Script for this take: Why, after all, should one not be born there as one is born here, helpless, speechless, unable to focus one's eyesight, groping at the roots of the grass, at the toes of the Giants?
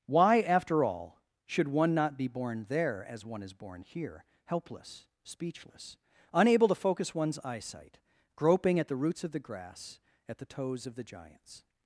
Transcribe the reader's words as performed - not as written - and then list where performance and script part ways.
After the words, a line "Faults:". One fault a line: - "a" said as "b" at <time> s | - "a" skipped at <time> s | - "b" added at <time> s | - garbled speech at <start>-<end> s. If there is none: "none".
Why, after all, should one not be born there as one is born here, helpless, speechless, unable to focus one's eyesight, groping at the roots of the grass, at the toes of the Giants?
Faults:
none